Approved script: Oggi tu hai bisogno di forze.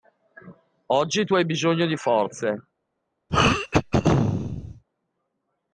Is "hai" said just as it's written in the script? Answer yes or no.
yes